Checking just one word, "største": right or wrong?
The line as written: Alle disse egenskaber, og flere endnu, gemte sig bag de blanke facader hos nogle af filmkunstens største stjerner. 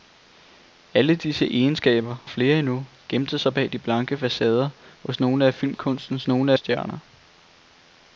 wrong